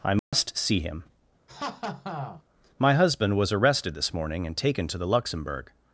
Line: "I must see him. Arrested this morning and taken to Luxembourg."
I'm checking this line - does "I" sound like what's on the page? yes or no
yes